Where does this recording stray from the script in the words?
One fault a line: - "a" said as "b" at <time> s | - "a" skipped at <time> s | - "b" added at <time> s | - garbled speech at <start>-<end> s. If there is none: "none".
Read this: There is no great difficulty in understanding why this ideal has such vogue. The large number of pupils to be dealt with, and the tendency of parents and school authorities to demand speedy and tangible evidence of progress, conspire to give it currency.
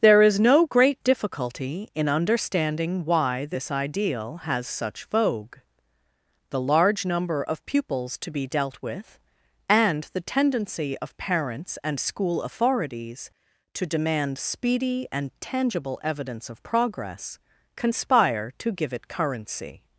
none